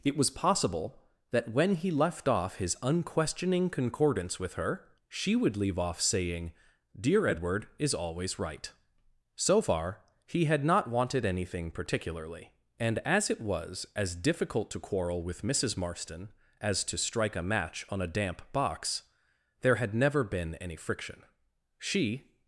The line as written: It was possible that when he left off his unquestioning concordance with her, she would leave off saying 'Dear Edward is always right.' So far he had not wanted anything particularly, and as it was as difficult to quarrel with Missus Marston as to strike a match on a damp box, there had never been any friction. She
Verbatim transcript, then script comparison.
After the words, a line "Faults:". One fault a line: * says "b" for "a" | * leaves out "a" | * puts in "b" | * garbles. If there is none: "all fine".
It was possible that when he left off his unquestioning concordance with her, she would leave off saying 'Dear Edward is always right.' So far he had not wanted anything particularly, and as it was as difficult to quarrel with Missus Marston as to strike a match on a damp box, there had never been any friction. She
Faults:
all fine